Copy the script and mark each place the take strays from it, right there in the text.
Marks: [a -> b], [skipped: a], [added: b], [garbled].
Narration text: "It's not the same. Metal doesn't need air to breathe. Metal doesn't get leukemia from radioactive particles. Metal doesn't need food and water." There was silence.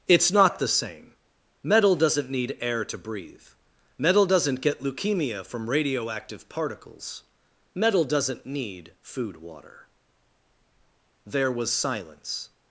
"It's not the same. Metal doesn't need air to breathe. Metal doesn't get leukemia from radioactive particles. Metal doesn't need food [skipped: and] water." There was silence.